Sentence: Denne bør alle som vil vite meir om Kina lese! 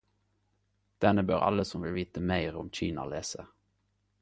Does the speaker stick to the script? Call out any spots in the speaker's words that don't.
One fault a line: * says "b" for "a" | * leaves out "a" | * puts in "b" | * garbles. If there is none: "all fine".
all fine